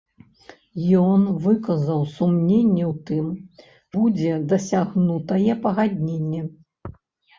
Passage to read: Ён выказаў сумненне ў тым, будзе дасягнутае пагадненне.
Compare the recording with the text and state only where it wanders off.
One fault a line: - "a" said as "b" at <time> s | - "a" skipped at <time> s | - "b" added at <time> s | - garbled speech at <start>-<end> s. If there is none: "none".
none